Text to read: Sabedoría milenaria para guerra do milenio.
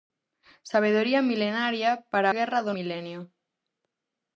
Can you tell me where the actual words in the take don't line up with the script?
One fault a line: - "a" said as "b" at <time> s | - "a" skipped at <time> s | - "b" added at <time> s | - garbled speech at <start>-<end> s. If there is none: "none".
none